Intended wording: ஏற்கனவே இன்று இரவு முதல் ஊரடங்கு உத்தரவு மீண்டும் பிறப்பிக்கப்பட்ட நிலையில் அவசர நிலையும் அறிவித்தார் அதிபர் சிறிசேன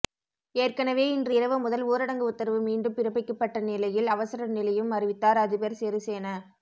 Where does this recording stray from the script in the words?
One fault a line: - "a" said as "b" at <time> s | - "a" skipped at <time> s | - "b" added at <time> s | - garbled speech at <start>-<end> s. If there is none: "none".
none